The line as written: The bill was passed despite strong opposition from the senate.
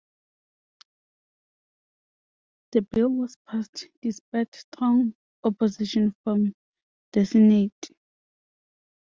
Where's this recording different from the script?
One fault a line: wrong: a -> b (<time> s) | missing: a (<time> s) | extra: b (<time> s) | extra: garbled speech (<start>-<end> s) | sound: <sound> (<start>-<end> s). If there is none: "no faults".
no faults